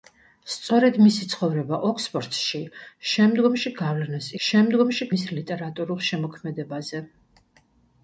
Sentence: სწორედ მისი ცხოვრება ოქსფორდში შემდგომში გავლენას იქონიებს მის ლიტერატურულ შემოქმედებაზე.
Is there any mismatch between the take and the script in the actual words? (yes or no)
yes